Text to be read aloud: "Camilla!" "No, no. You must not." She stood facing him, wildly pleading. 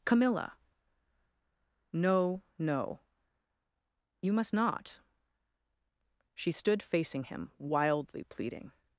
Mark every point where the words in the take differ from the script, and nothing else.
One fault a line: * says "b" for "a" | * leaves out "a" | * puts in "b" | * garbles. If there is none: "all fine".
all fine